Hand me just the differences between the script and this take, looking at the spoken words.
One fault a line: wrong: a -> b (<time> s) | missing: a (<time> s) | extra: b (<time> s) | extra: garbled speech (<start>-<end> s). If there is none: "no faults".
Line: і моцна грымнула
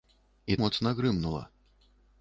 no faults